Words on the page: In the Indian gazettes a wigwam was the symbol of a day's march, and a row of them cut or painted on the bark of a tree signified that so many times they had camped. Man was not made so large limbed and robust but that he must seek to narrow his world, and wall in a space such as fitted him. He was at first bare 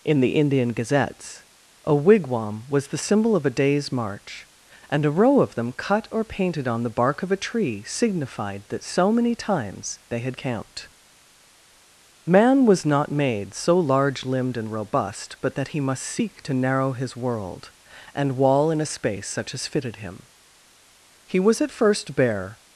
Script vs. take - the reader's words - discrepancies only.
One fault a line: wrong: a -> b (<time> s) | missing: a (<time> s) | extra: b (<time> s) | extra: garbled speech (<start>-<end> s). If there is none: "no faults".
no faults